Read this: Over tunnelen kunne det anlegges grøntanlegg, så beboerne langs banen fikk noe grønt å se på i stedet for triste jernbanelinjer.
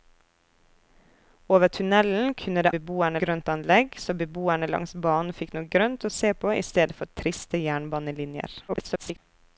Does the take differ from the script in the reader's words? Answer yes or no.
yes